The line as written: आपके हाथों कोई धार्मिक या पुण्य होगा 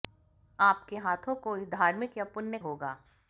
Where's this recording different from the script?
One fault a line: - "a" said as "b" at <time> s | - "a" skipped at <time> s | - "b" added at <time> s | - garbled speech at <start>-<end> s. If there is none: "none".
none